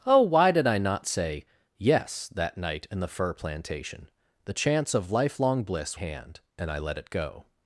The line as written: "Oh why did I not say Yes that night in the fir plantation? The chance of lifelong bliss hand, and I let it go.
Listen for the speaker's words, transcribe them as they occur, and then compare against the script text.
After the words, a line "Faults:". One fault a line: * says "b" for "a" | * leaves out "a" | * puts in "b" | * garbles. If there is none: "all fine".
"Oh why did I not say Yes that night in the fir plantation? The chance of lifelong bliss hand, and I let it go.
Faults:
all fine